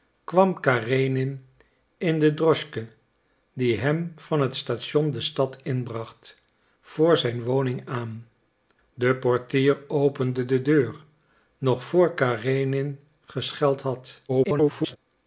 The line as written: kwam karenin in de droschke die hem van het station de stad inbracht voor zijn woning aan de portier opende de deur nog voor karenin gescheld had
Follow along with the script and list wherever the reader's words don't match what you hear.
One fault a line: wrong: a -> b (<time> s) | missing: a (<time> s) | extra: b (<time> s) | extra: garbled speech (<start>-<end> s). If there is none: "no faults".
extra: garbled speech (14.3-15.0 s)